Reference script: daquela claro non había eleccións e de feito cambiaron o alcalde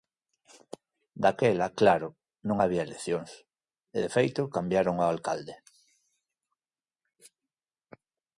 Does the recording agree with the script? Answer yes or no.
yes